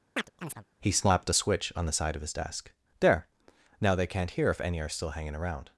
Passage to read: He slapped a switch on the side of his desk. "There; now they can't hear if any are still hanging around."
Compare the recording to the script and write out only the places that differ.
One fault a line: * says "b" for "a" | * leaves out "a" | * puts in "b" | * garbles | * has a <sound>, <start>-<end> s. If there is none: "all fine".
* has a chirp, 0.2-0.7 s